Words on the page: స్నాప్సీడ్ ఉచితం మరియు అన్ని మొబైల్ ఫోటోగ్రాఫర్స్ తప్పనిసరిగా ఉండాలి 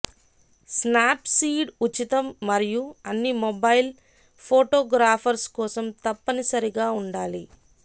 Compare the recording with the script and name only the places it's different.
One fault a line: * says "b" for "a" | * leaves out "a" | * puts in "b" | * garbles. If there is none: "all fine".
* puts in "కోసం"